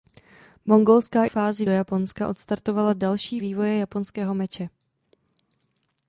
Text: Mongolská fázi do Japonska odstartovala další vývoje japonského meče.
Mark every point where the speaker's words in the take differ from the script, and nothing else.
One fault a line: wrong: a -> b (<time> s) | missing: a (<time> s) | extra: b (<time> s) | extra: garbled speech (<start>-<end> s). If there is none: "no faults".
no faults